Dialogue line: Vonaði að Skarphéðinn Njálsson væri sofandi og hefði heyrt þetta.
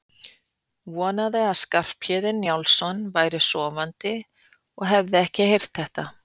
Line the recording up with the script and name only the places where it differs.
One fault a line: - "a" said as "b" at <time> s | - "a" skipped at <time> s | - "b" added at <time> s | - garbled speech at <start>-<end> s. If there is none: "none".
- "ekki" added at 5.3 s